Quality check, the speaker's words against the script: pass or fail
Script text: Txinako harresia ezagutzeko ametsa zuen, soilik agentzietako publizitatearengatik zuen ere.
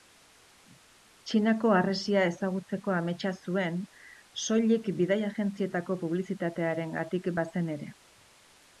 fail